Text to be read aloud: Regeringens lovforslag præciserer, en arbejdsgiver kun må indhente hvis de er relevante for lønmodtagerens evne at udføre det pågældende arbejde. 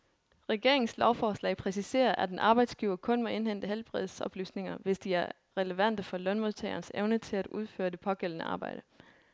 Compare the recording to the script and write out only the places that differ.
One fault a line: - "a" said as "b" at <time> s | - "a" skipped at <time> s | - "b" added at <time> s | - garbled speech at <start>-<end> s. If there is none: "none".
- "at" added at 2.1 s
- "helbredsoplysninger" added at 3.6 s
- "til" added at 7.2 s